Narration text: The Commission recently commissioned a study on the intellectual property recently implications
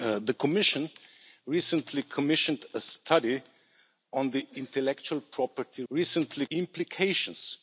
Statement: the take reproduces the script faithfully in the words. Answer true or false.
true